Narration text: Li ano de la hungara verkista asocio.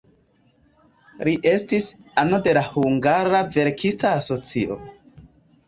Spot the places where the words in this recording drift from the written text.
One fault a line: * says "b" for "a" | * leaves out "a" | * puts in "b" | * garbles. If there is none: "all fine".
* puts in "estis"